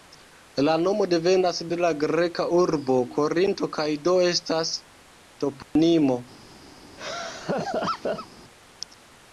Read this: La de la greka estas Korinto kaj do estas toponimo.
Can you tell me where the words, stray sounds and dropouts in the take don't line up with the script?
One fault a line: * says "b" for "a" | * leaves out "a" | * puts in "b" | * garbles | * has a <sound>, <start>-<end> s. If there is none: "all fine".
* puts in "nomo devenas"
* says "urbo" for "estas"
* has a dropout, 5.6-5.8 s
* has a laugh, 7.0-8.3 s